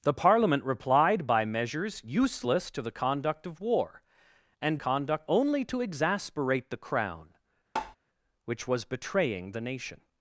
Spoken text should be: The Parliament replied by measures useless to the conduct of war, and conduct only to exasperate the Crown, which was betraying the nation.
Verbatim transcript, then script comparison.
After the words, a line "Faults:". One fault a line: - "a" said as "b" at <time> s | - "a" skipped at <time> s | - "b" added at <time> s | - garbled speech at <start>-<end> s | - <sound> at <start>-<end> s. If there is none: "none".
The Parliament replied by measures useless to the conduct of war, and conduct only to exasperate the Crown, which was betraying the nation.
Faults:
- tap at 7.8-8.0 s